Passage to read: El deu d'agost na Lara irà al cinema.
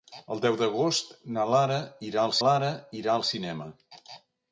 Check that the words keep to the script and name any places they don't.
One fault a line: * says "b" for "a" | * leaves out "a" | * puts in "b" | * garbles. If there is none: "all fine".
* puts in "Lara irà al"